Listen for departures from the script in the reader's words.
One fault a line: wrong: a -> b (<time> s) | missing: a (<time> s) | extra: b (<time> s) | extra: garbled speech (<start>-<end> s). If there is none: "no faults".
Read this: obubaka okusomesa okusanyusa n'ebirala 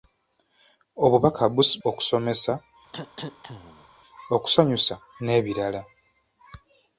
no faults